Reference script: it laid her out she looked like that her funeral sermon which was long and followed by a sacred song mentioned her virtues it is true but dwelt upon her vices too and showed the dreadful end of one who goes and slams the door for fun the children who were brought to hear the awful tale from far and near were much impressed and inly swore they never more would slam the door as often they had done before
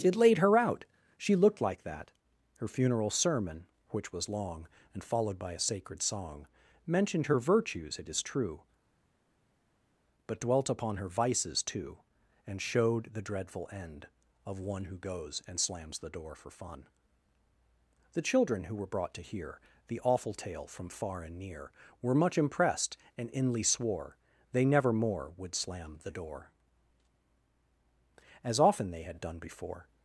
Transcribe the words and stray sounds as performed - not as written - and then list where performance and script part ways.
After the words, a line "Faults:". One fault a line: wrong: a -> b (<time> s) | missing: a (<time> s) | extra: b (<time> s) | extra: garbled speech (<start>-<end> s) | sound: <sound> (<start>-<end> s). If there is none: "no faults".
it laid her out she looked like that her funeral sermon which was long and followed by a sacred song mentioned her virtues it is true but dwelt upon her vices too and showed the dreadful end of one who goes and slams the door for fun the children who were brought to hear the awful tale from far and near were much impressed and inly swore they never more would slam the door as often they had done before
Faults:
no faults